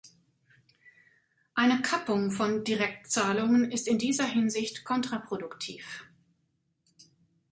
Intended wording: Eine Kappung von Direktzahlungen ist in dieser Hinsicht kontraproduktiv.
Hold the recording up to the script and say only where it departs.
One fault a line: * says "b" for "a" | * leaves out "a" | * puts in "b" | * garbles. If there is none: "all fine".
all fine